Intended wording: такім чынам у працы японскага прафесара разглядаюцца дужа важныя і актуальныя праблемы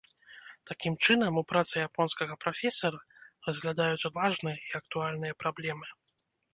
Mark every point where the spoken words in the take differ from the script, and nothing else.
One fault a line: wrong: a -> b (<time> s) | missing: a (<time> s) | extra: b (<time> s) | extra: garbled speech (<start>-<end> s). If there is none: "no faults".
missing: дужа (4.1 s)